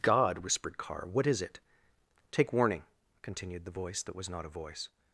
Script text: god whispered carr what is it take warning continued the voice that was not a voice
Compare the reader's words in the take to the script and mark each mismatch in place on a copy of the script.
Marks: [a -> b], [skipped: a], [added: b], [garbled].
god whispered carr what is it take warning continued the voice that was not a voice